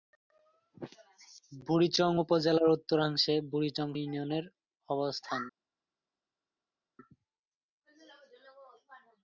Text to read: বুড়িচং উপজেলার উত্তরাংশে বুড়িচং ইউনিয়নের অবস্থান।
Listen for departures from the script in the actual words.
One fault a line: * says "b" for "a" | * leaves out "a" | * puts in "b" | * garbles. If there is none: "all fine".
all fine